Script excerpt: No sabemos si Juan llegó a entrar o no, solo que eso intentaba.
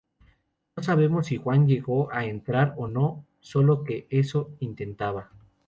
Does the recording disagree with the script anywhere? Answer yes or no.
no